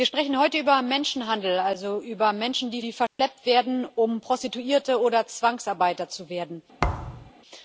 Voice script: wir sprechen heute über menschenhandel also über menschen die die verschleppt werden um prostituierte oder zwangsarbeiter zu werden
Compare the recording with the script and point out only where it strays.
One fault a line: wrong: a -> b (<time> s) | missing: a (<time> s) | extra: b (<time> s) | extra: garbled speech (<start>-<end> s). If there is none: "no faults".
no faults